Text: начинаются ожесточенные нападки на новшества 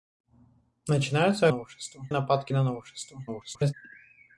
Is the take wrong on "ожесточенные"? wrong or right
wrong